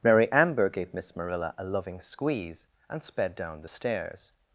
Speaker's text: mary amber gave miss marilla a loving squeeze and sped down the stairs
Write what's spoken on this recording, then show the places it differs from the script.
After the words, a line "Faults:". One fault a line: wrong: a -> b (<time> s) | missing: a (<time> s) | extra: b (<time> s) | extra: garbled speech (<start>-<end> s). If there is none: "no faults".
mary amber gave miss marilla a loving squeeze and sped down the stairs
Faults:
no faults